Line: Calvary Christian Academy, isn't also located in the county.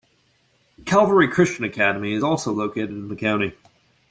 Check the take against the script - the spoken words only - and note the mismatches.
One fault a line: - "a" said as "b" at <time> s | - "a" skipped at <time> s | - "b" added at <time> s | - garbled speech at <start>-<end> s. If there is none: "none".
- "isn't" said as "is" at 2.1 s